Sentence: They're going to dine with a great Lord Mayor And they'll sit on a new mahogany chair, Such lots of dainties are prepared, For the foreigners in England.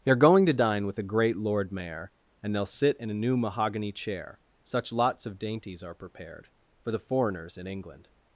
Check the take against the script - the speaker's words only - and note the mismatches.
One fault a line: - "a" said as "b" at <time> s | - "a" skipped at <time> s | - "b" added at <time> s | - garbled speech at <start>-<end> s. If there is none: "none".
- "on" said as "in" at 3.0 s